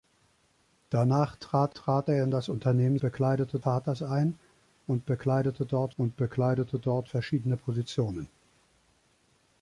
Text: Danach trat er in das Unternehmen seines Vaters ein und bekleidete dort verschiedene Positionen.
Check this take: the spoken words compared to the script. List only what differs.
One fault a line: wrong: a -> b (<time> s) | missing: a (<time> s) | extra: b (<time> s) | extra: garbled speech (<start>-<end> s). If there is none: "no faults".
extra: trat (1.7 s)
wrong: seines -> bekleidete (3.0 s)
extra: und bekleidete dort (6.0 s)